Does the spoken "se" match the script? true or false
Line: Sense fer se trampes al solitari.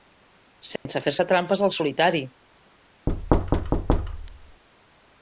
true